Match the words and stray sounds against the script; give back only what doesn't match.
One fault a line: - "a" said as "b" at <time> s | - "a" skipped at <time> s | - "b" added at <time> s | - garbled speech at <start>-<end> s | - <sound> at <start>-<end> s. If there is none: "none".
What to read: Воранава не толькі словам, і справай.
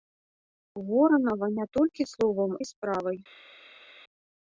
none